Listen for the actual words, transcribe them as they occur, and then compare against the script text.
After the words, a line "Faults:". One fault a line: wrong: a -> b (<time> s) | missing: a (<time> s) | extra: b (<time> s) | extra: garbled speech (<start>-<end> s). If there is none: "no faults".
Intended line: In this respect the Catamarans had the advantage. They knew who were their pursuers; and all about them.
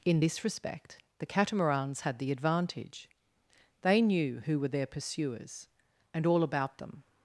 In this respect the Catamarans had the advantage. They knew who were their pursuers; and all about them.
Faults:
no faults